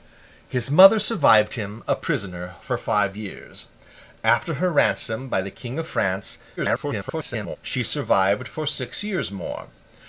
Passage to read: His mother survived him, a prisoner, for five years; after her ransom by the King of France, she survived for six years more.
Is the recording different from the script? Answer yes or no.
yes